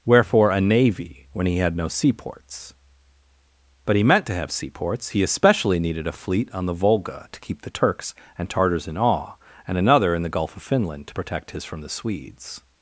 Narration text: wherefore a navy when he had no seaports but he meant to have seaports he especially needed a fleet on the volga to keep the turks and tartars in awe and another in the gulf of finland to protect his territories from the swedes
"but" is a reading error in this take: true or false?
false